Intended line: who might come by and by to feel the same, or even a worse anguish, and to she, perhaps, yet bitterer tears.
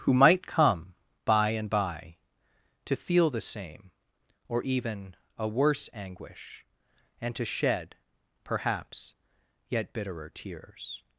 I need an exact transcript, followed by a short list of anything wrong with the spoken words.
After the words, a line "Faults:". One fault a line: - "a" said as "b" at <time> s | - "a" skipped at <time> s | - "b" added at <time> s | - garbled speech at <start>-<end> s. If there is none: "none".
who might come by and by to feel the same, or even a worse anguish, and to shed, perhaps, yet bitterer tears.
Faults:
- "she" said as "shed" at 7.5 s